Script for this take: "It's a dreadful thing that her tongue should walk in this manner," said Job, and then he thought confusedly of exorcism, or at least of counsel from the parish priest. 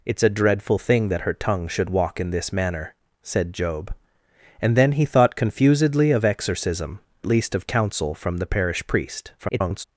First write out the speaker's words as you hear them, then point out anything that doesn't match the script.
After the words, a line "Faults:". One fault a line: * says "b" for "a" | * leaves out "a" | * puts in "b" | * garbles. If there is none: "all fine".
"It's a dreadful thing that her tongue should walk in this manner," said Job, and then he thought confusedly of exorcism, least of counsel from the parish priest. [garbled]
Faults:
* leaves out "or at"
* garbles